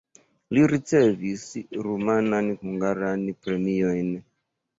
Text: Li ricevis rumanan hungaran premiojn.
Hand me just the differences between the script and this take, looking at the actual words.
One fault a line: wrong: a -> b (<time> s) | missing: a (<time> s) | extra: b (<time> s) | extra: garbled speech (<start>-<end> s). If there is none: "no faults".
no faults